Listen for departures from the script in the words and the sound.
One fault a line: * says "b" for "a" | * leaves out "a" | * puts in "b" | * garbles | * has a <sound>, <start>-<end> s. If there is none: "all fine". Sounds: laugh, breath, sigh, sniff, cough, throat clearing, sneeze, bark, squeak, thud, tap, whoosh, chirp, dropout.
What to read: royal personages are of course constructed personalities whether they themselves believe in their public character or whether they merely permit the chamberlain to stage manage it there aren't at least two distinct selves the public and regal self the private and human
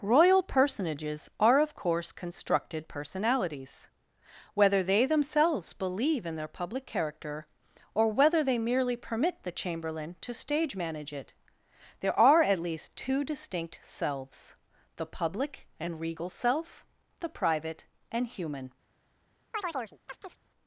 * says "are" for "aren't"
* has a chirp, 19.5-20.4 s